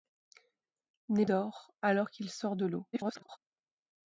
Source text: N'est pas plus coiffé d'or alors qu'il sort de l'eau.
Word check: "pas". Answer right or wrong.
wrong